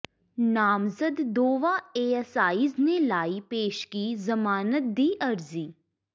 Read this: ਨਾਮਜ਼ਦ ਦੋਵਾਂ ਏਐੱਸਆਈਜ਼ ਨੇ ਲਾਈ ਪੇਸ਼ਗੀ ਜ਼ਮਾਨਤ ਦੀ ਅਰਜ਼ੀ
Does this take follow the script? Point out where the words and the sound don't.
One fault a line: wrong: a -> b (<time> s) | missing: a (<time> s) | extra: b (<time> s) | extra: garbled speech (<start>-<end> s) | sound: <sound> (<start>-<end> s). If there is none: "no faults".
no faults